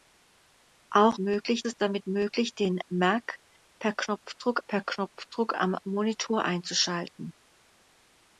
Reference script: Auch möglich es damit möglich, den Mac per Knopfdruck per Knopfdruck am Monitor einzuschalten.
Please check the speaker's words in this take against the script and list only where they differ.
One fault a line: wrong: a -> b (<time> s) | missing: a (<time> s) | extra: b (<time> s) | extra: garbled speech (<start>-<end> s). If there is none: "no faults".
no faults